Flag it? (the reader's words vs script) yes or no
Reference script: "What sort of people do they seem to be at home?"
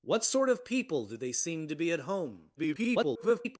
yes